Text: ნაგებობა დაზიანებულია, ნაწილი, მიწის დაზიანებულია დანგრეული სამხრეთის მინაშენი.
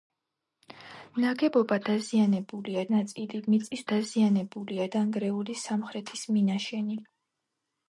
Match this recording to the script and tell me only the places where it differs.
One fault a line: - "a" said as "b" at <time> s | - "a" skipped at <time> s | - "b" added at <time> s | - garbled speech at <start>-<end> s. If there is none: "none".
none